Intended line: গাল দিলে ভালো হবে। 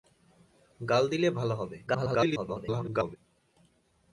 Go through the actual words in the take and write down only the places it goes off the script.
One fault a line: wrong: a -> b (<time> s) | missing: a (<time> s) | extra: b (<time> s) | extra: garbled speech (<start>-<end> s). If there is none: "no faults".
extra: garbled speech (1.9-3.2 s)